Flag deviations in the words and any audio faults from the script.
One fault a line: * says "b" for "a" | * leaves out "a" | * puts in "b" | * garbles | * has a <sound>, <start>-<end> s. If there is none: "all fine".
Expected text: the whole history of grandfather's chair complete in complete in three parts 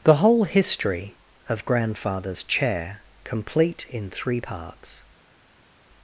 * leaves out "complete in"